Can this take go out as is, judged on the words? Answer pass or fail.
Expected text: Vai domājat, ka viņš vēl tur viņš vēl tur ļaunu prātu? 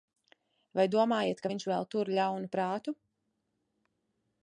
fail